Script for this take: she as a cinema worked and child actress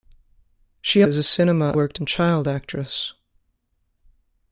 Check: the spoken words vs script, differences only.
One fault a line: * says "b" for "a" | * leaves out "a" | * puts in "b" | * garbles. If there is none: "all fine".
all fine